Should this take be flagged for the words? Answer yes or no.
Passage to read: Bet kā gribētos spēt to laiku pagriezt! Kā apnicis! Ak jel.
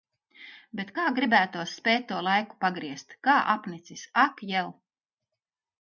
no